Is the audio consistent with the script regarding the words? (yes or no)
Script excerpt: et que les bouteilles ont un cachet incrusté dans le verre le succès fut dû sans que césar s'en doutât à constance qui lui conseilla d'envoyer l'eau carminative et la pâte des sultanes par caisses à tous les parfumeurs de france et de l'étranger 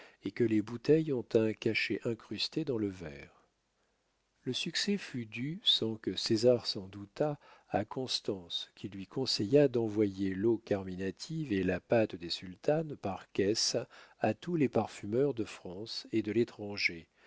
yes